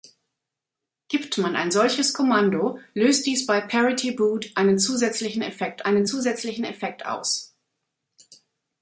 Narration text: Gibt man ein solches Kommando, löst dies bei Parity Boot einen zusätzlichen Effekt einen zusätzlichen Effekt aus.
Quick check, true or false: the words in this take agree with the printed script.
true